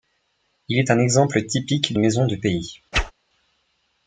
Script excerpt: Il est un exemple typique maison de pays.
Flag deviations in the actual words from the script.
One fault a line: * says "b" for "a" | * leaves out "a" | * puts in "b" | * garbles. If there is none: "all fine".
all fine